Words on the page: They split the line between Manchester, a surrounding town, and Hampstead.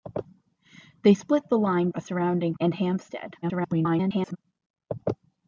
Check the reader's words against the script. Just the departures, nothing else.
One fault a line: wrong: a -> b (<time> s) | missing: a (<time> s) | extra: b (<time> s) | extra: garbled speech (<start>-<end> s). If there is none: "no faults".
missing: between Manchester (1.9 s)
missing: town (2.5 s)
extra: garbled speech (3.4-4.4 s)